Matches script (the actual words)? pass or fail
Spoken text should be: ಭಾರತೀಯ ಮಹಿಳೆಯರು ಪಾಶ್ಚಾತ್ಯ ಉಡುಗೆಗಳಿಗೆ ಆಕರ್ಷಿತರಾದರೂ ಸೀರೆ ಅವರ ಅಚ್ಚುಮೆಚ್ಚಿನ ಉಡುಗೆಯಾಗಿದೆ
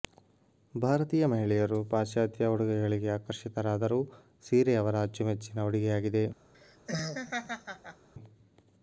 pass